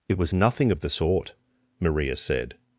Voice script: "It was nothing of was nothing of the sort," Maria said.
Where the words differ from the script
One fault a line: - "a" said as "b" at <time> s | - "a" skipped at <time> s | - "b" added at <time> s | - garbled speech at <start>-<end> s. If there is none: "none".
- "was nothing of" skipped at 0.8 s